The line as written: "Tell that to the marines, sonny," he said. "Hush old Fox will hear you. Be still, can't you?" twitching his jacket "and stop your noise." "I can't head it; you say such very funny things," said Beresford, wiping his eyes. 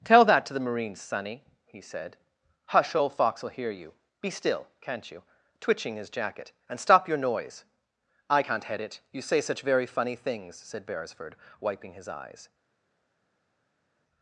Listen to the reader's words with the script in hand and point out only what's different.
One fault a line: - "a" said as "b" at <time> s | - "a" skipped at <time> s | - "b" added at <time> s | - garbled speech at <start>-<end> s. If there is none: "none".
none